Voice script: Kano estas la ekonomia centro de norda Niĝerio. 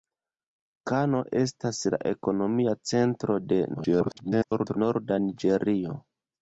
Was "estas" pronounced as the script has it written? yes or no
yes